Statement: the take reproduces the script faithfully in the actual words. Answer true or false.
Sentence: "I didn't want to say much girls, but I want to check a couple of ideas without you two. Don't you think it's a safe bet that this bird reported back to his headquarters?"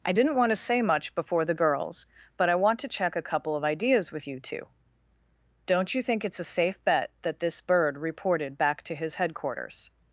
false